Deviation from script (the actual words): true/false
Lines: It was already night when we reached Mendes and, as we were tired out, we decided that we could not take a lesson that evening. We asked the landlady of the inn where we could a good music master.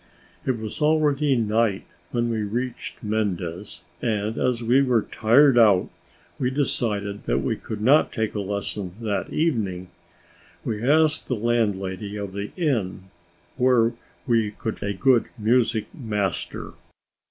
false